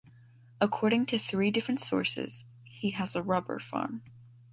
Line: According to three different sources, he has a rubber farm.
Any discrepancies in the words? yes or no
no